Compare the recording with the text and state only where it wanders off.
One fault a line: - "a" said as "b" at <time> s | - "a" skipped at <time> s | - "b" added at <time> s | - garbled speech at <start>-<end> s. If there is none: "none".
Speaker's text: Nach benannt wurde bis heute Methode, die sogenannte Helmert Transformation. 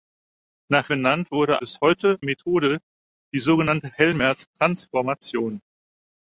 none